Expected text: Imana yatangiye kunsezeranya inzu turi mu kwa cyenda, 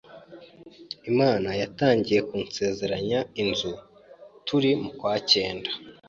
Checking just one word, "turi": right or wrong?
right